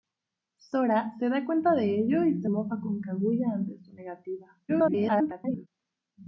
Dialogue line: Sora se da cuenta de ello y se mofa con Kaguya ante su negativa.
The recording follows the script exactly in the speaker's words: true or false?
false